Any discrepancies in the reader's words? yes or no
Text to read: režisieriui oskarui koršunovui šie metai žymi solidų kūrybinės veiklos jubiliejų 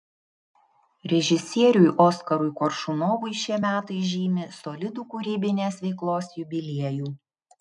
no